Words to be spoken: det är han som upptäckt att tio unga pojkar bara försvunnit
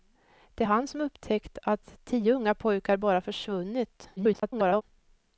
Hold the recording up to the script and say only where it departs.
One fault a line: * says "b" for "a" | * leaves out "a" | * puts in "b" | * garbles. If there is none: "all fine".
* garbles